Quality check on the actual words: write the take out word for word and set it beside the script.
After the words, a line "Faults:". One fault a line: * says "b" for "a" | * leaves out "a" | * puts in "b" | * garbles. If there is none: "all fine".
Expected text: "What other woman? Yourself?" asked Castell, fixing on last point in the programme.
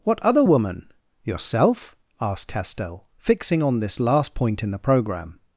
"What other woman? Yourself?" asked Castell, fixing on this last point in the programme.
Faults:
* puts in "this"